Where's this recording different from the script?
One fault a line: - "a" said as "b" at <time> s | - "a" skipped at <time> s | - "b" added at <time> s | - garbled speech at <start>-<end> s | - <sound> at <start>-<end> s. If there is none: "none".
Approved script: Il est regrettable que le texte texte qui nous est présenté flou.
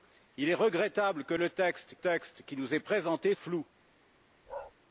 - bark at 4.5-4.7 s